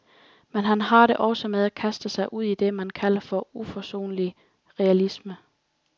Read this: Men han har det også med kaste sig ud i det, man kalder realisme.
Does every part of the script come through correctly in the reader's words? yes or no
no